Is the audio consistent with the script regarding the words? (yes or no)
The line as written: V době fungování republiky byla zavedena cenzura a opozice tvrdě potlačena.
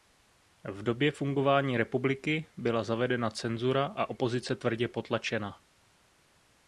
yes